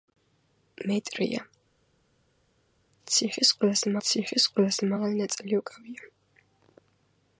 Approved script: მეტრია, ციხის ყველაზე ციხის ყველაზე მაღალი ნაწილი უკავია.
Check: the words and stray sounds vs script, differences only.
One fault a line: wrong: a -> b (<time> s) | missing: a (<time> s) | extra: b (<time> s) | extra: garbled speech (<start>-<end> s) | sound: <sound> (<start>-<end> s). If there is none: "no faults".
no faults